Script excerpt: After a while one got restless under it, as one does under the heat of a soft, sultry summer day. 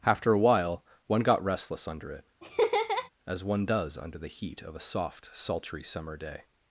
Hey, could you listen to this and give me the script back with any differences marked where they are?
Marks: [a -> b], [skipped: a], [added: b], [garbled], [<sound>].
After a while one got restless under it, [laugh] as one does under the heat of a soft, sultry summer day.